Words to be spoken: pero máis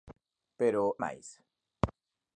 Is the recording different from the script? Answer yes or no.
no